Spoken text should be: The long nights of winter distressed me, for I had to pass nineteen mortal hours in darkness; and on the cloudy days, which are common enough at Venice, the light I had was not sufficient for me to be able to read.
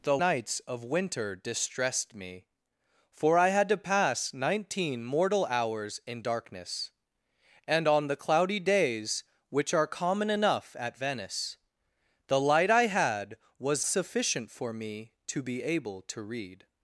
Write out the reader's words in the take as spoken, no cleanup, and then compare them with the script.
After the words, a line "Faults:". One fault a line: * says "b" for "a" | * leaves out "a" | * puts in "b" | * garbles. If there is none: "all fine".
The nights of winter distressed me, for I had to pass nineteen mortal hours in darkness; and on the cloudy days, which are common enough at Venice, the light I had was sufficient for me to be able to read.
Faults:
* leaves out "long"
* leaves out "not"